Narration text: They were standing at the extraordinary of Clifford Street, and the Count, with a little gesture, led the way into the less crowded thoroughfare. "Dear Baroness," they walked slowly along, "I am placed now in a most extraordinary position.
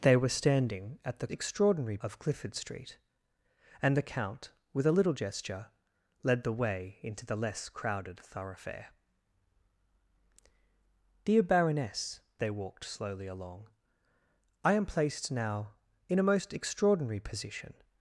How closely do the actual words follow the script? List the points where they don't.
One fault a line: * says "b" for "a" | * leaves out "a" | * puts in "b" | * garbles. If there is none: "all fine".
all fine